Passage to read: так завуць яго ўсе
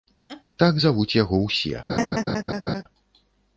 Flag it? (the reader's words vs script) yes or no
no